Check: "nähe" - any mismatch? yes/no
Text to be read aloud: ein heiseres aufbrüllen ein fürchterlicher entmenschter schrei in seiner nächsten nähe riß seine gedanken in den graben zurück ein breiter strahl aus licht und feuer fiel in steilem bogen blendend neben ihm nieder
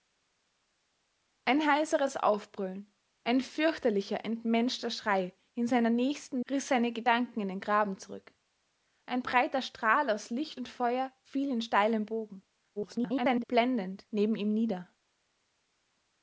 yes